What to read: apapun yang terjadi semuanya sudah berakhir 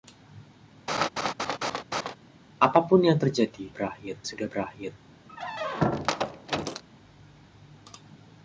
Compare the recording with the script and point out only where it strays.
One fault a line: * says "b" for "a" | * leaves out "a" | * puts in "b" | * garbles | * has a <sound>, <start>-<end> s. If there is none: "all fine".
* has a laugh, 0.9-2.2 s
* says "berakhir" for "semuanya"
* has a squeak, 5.3-6.8 s